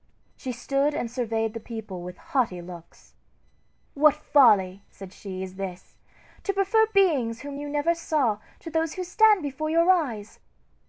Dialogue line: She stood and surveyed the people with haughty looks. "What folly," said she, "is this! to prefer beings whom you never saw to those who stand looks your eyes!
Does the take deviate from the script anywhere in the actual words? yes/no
yes